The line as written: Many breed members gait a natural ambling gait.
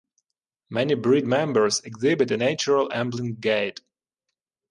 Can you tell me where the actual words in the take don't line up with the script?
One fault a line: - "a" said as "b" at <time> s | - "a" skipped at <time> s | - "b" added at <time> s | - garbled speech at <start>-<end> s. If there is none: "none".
- "gait" said as "exhibit" at 1.8 s